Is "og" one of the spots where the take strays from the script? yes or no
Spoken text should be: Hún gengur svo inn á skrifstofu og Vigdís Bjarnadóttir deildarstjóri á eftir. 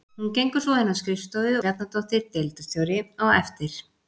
yes